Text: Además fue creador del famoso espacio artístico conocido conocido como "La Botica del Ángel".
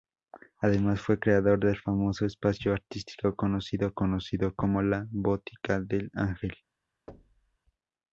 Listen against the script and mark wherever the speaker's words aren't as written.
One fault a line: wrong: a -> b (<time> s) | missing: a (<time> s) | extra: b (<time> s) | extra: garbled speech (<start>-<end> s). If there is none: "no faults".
no faults